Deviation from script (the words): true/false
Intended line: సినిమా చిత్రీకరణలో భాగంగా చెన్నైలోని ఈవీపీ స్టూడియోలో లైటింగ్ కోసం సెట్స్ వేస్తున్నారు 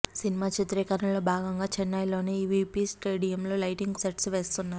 true